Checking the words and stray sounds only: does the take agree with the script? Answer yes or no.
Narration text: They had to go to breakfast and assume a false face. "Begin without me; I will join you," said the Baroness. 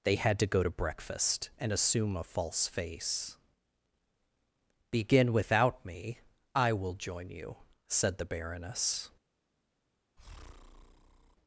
no